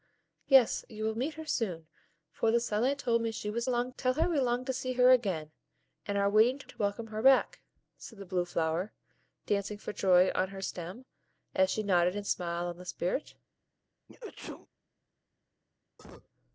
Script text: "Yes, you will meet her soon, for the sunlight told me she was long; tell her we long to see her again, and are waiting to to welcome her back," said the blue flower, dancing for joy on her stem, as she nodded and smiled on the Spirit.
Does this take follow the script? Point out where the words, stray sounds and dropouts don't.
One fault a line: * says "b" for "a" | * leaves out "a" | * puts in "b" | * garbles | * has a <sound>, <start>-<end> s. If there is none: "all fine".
* has a sneeze, 14.1-14.7 s
* has a cough, 16.0-16.3 s